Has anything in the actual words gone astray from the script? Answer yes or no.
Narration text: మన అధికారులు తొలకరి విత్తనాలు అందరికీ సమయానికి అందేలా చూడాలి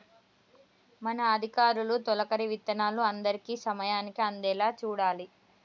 no